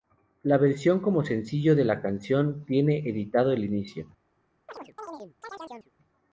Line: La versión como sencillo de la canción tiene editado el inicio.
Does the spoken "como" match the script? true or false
true